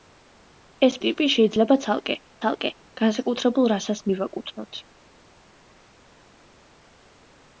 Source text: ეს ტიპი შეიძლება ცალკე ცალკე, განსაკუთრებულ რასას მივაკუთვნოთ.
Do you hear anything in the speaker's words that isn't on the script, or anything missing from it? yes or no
no